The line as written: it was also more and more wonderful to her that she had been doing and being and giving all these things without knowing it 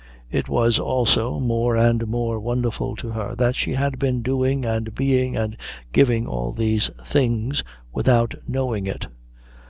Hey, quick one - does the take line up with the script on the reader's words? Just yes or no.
yes